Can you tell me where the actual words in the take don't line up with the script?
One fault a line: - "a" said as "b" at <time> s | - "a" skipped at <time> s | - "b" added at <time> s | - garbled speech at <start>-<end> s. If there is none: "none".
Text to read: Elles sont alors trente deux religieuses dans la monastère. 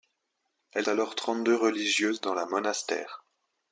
- "sont" skipped at 0.9 s